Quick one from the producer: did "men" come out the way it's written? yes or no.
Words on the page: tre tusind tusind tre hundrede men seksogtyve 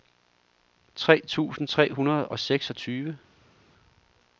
no